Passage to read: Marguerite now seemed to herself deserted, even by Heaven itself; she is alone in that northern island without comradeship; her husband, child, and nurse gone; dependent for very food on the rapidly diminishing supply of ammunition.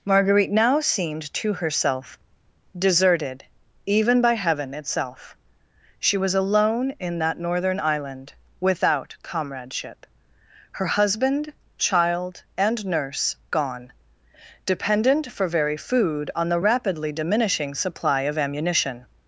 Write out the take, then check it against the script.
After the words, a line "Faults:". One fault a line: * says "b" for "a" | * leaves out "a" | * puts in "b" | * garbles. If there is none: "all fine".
Marguerite now seemed to herself deserted, even by Heaven itself; she was alone in that northern island without comradeship; her husband, child, and nurse gone; dependent for very food on the rapidly diminishing supply of ammunition.
Faults:
* says "was" for "is"